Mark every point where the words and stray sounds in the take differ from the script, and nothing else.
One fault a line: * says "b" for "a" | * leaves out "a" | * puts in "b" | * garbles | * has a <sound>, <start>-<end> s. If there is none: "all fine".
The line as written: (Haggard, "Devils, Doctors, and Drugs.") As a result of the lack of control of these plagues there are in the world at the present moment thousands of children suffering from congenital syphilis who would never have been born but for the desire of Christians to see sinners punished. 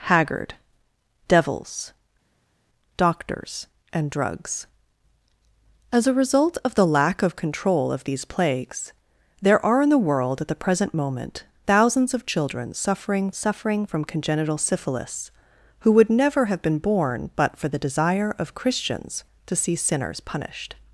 * puts in "suffering"